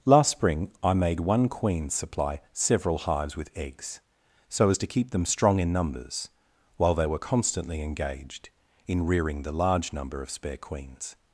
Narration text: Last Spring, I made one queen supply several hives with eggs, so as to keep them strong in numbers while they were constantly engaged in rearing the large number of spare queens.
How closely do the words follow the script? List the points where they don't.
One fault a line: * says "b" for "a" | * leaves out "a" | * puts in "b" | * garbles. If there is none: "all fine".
all fine